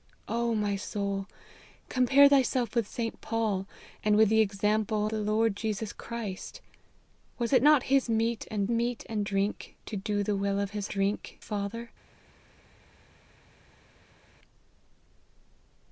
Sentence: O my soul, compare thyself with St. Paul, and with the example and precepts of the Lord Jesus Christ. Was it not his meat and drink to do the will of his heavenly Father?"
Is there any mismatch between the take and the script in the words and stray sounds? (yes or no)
yes